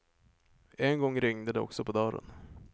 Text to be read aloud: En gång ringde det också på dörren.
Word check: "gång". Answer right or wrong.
right